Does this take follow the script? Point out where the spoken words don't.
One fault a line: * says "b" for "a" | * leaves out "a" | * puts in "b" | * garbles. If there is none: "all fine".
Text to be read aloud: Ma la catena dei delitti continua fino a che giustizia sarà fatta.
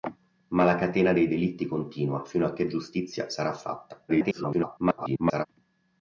* garbles